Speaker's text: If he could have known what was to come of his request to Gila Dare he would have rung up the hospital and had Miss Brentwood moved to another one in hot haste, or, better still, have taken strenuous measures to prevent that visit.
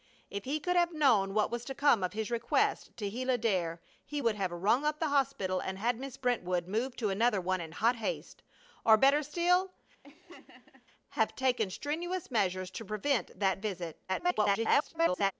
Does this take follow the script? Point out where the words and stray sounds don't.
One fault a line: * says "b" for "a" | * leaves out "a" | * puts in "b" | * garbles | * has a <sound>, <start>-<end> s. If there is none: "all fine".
* has a laugh, 10.0-10.9 s
* garbles